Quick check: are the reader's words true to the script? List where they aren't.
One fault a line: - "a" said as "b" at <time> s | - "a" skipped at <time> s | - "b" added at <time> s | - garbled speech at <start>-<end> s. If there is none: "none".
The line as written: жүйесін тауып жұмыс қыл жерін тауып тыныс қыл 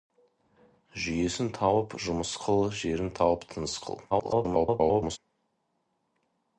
- garbled speech at 4.1-5.2 s